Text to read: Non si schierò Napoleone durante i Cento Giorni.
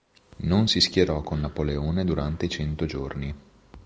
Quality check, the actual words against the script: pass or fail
fail